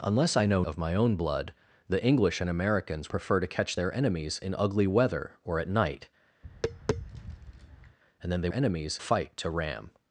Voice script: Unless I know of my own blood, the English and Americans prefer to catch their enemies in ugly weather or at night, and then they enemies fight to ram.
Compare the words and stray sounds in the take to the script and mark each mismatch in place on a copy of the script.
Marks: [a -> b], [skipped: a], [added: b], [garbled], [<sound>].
Unless I know of my own blood, the English and Americans prefer to catch their enemies in ugly weather or at night, [tap] and then they enemies fight to ram.